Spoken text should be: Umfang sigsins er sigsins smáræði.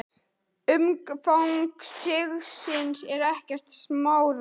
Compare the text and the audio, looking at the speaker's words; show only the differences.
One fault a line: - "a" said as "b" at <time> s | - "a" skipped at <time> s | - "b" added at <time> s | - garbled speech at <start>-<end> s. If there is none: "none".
- "sigsins" said as "ekkert" at 3.3 s